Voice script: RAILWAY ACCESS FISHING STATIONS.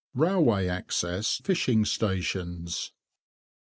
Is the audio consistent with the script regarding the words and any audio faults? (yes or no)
yes